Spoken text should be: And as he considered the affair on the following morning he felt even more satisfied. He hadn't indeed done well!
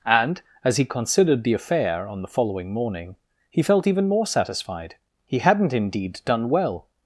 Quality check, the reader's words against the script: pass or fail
pass